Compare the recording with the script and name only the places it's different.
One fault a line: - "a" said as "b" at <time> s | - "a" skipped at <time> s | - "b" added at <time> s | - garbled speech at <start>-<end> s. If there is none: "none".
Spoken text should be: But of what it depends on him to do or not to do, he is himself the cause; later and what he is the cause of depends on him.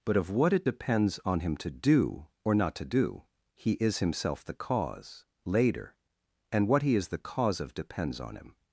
none